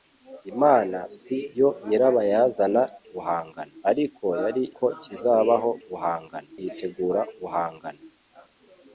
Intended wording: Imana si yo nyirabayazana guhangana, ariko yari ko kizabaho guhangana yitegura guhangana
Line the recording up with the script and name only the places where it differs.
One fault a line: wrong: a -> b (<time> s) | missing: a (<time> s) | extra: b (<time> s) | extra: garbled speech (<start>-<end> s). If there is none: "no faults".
no faults